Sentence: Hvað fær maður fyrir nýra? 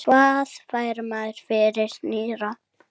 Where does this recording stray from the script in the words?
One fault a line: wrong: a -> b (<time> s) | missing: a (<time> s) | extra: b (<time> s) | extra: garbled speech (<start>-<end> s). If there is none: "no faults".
no faults